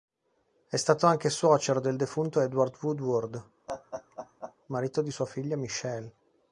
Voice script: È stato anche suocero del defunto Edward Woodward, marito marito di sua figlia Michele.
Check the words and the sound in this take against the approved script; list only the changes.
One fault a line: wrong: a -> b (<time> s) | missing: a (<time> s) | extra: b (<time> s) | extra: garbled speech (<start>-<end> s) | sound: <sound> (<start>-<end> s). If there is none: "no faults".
sound: laugh (3.7-4.5 s)
missing: marito (5.0 s)